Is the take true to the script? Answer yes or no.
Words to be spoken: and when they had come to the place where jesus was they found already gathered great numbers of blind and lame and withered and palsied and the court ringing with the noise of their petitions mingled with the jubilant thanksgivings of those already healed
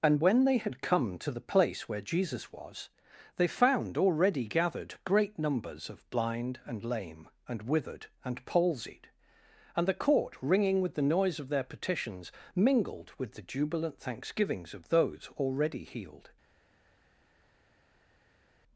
yes